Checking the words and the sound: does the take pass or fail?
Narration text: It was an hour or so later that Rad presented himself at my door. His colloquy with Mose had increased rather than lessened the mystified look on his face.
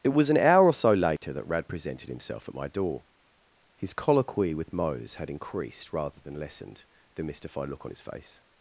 fail